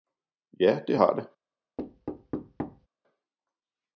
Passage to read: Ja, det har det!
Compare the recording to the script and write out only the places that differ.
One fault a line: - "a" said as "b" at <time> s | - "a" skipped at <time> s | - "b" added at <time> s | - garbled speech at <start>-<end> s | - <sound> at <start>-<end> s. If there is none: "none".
- thud at 1.8-2.9 s